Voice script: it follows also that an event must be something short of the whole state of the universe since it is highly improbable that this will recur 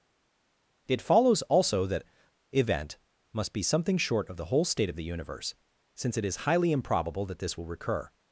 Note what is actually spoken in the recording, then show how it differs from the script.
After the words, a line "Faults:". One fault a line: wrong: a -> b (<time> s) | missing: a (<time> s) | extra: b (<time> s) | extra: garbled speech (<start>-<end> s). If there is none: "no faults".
it follows also that event must be something short of the whole state of the universe since it is highly improbable that this will recur
Faults:
missing: an (2.0 s)